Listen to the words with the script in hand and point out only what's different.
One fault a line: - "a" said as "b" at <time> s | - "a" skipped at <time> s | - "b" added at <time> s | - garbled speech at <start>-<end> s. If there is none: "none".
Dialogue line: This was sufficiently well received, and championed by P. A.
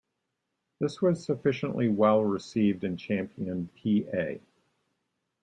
- "by" skipped at 3.7 s